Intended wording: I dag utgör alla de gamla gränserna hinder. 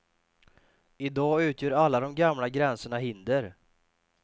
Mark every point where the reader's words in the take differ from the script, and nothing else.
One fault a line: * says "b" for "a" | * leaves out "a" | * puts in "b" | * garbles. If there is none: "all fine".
all fine